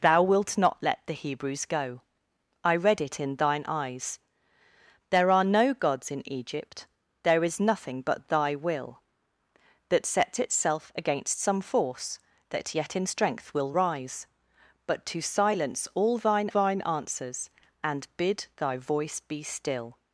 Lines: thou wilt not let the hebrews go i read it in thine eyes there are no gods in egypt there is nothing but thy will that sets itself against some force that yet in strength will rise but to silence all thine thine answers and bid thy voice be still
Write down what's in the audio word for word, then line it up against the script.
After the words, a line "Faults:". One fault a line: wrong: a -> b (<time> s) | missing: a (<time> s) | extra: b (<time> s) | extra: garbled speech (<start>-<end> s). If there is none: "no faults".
thou wilt not let the hebrews go i read it in thine eyes there are no gods in egypt there is nothing but thy will that sets itself against some force that yet in strength will rise but to silence all thine thine answers and bid thy voice be still
Faults:
no faults